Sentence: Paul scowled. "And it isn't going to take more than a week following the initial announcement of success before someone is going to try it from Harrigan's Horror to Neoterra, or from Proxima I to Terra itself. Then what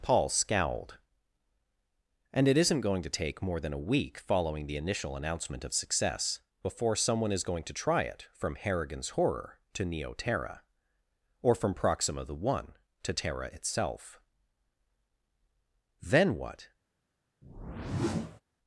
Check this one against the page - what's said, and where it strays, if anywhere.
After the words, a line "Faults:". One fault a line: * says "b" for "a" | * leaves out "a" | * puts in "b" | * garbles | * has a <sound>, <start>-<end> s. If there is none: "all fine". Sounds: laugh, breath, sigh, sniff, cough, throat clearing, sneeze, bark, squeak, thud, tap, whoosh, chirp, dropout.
Paul scowled. "And it isn't going to take more than a week following the initial announcement of success before someone is going to try it from Harrigan's Horror to Neoterra, or from Proxima the one to Terra itself. Then what
Faults:
* says "the one" for "I"
* has a whoosh, 17.4-18.4 s